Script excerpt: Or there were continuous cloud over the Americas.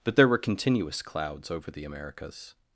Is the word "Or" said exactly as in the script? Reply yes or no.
no